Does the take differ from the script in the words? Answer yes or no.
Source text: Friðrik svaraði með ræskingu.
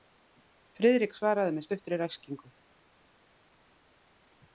yes